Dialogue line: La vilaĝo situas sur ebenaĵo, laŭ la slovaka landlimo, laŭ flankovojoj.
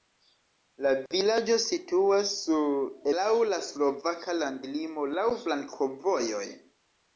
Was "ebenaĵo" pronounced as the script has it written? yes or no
no